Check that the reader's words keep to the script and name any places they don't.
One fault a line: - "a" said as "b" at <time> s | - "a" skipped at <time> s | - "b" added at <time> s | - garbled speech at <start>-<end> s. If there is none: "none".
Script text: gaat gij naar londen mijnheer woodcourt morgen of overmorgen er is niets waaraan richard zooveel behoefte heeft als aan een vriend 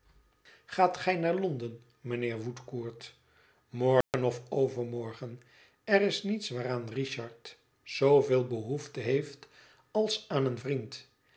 none